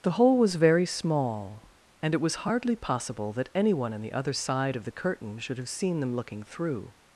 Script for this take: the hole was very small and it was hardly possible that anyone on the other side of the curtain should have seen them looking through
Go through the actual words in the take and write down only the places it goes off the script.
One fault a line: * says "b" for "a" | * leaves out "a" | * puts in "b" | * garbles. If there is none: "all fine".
all fine